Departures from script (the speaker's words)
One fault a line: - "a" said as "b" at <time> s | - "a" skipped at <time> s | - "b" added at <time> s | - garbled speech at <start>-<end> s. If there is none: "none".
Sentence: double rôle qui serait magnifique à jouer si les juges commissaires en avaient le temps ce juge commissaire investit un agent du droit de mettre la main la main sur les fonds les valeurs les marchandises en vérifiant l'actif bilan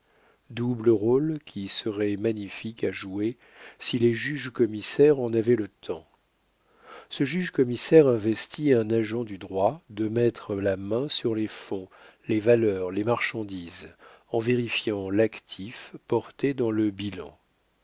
- "la main" skipped at 11.1 s
- "porté dans le" added at 16.1 s